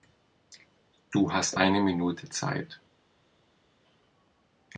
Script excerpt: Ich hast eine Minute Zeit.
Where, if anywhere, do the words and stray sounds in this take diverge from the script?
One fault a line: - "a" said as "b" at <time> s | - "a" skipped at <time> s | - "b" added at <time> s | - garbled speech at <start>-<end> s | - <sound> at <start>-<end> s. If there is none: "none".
- "Ich" said as "Du" at 1.1 s